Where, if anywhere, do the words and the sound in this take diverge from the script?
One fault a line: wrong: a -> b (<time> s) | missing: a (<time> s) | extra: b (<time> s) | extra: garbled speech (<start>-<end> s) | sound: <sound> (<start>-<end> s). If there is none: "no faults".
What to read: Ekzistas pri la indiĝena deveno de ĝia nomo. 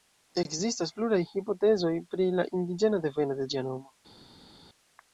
extra: pluraj hipotezoj (1.0 s)